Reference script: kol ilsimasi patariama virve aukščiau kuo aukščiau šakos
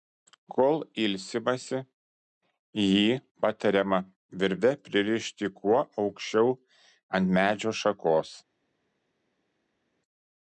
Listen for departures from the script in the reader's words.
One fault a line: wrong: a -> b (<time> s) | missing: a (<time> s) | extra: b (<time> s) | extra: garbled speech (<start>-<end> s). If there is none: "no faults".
extra: jį (2.8 s)
wrong: aukščiau -> pririšti (4.9 s)
extra: ant medžio (7.2 s)